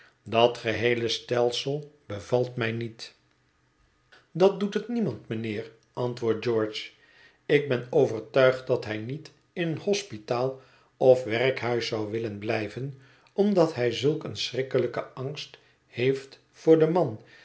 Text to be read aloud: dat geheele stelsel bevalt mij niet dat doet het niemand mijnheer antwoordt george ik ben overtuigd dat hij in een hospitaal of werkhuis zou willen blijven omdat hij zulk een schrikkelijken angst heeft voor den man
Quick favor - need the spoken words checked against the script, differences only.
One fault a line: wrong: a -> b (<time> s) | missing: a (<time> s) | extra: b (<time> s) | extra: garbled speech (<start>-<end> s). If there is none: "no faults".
extra: niet (9.0 s)